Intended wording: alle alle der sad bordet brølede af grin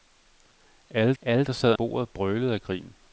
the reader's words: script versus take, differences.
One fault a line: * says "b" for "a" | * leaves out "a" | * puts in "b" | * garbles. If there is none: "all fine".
all fine